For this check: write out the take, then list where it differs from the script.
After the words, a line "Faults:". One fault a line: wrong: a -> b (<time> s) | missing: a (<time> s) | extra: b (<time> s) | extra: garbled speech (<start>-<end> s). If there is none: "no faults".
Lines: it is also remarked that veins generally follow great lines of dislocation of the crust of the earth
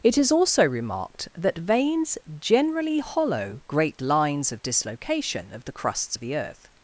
it is also remarked that veins generally hollow great lines of dislocation of the crusts of the earth
Faults:
wrong: follow -> hollow (3.0 s)
wrong: crust -> crusts (5.7 s)